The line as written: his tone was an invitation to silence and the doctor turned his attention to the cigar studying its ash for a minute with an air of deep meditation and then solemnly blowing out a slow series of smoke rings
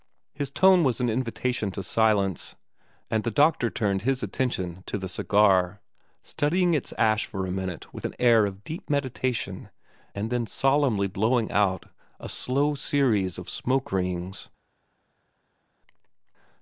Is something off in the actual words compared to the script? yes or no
no